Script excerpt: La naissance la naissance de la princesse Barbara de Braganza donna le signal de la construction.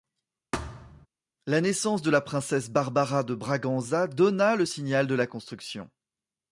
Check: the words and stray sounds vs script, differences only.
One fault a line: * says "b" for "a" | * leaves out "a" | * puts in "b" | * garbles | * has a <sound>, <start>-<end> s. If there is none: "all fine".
* has a thud, 0.5-1.1 s
* leaves out "la naissance"